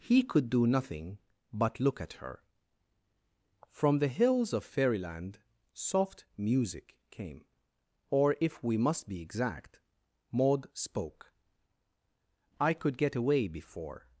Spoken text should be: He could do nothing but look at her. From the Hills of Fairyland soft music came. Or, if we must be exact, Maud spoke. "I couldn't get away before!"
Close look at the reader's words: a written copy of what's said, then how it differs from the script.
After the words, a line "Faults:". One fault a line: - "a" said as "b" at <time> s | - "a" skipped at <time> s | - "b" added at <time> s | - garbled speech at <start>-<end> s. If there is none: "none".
He could do nothing but look at her. From the Hills of Fairyland soft music came. Or, if we must be exact, Maud spoke. "I could get away before!"
Faults:
- "couldn't" said as "could" at 12.7 s